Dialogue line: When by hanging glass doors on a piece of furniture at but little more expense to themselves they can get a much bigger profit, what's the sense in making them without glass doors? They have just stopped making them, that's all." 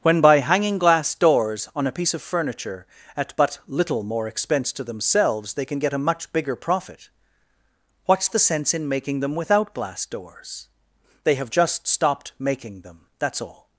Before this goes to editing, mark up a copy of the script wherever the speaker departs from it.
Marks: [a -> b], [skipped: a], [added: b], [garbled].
When by hanging glass doors on a piece of furniture at but little more expense to themselves they can get a much bigger profit, what's the sense in making them without glass doors? They have just stopped making them, that's all."